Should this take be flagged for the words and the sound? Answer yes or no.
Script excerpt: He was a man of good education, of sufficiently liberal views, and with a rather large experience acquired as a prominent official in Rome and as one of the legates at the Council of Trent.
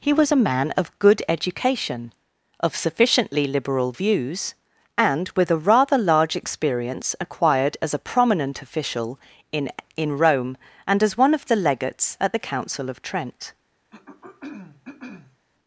yes